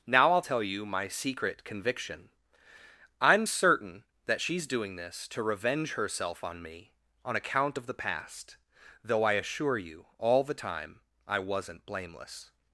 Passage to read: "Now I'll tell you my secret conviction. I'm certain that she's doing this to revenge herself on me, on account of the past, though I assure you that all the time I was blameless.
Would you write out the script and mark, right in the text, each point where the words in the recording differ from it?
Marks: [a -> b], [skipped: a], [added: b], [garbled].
"Now I'll tell you my secret conviction. I'm certain that she's doing this to revenge herself on me, on account of the past, though I assure you [skipped: that] all the time I [was -> wasn't] blameless.